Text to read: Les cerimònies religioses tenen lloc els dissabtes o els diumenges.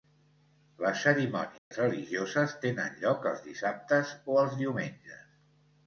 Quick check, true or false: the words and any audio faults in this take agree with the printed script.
false